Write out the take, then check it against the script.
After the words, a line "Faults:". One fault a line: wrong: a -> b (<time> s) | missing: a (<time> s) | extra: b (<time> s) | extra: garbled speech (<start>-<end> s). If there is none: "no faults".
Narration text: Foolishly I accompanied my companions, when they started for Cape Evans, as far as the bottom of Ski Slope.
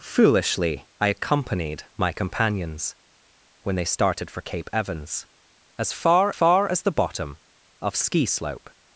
Foolishly I accompanied my companions, when they started for Cape Evans, as far far as the bottom of Ski Slope.
Faults:
extra: far (6.3 s)